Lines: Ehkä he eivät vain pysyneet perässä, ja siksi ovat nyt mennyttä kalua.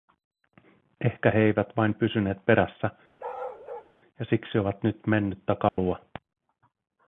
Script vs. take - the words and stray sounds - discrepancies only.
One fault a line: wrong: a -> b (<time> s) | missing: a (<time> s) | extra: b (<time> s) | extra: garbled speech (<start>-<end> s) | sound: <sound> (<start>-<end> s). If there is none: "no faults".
sound: bark (3.2-3.9 s)
sound: dropout (5.7-5.8 s)